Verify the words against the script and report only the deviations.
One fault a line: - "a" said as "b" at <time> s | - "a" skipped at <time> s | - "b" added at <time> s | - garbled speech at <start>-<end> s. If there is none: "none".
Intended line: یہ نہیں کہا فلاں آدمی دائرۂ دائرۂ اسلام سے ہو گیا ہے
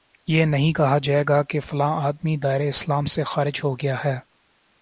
- "جائے گا کہ" added at 1.0 s
- "دائرۂ" skipped at 2.7 s
- "خارج" added at 3.2 s